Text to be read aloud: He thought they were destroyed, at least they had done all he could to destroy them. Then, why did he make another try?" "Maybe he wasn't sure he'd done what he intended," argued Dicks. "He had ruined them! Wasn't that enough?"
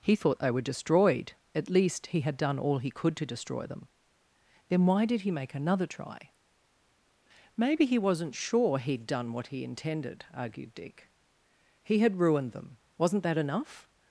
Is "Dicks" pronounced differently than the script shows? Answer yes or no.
yes